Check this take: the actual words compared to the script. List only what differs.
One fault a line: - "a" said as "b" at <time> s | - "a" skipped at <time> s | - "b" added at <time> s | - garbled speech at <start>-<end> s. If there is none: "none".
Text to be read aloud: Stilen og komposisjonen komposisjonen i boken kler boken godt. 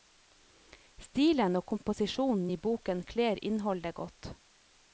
- "komposisjonen" skipped at 2.5 s
- "boken" said as "innholdet" at 3.5 s